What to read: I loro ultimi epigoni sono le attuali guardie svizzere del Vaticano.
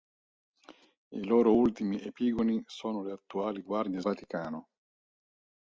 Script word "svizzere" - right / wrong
wrong